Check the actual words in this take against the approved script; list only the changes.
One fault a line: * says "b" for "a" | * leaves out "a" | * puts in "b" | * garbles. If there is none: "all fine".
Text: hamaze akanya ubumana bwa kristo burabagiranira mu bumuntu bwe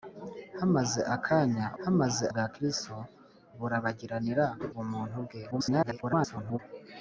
* says "hamaze" for "ubumana"
* leaves out "mu"
* garbles